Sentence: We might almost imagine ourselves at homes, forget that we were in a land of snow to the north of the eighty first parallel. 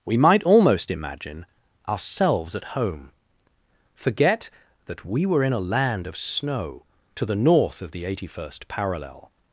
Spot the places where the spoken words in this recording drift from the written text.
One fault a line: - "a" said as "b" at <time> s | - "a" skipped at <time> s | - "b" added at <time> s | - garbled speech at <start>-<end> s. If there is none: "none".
- "homes" said as "home" at 2.7 s